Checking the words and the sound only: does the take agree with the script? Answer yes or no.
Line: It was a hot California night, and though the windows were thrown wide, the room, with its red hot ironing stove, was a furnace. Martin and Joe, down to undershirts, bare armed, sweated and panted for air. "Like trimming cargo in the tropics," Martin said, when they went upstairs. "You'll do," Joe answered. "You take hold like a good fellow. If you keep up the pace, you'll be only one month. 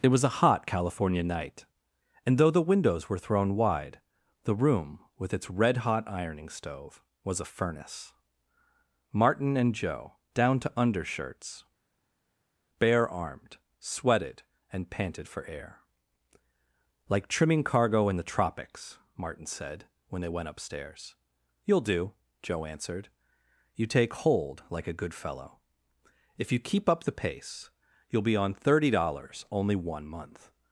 no